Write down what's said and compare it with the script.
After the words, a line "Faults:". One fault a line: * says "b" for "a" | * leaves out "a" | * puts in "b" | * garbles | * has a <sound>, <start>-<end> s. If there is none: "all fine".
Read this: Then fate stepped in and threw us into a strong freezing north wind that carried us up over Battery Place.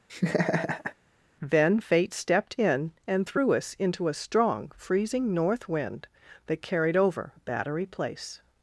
Then fate stepped in and threw us into a strong freezing north wind that carried over Battery Place.
Faults:
* has a laugh, 0.1-0.9 s
* leaves out "us up"